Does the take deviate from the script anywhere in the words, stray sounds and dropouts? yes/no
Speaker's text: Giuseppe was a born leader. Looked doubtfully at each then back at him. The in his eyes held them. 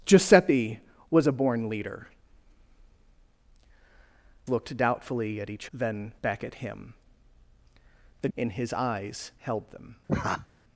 yes